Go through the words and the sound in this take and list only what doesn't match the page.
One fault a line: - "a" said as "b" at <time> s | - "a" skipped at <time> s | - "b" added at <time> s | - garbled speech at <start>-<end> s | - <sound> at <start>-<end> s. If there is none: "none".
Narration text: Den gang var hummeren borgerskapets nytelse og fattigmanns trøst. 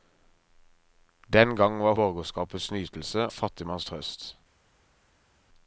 - "hummeren" skipped at 1.9 s
- "og" skipped at 3.3 s